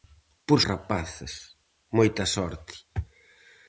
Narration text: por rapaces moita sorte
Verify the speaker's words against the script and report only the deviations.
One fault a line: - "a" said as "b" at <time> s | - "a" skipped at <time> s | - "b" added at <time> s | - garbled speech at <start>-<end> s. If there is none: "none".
none